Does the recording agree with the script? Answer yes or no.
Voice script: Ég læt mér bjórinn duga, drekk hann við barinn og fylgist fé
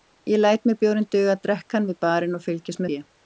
yes